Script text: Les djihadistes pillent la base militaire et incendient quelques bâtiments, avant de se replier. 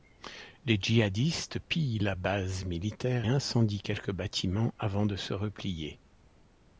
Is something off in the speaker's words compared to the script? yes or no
yes